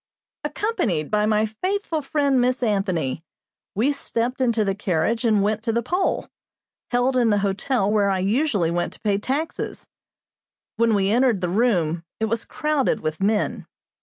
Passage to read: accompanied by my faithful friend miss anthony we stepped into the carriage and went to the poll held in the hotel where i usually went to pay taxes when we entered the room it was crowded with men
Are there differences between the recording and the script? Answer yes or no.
no